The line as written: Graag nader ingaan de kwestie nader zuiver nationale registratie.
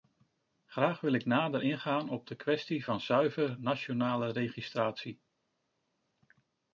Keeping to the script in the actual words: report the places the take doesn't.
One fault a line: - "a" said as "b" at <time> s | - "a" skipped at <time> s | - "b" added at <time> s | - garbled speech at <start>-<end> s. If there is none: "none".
- "wil ik" added at 1.0 s
- "op" added at 2.1 s
- "nader" said as "van" at 2.8 s